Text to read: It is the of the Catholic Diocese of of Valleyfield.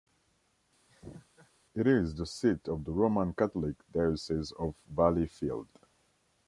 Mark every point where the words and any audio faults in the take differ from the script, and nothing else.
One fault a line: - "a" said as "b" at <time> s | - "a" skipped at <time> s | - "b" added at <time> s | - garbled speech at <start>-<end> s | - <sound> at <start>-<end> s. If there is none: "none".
- laugh at 0.9-1.5 s
- "seat" added at 2.3 s
- "Roman" added at 2.9 s
- "of" skipped at 4.7 s